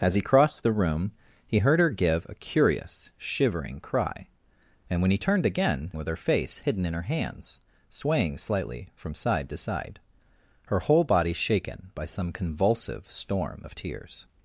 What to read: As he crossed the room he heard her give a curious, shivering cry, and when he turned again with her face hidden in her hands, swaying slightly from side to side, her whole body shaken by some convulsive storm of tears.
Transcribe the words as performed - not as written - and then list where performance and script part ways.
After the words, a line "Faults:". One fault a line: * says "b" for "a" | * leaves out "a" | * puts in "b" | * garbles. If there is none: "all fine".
As he crossed the room he heard her give a curious, shivering cry, and when he turned again with her face hidden in her hands, swaying slightly from side to side, her whole body shaken by some convulsive storm of tears.
Faults:
all fine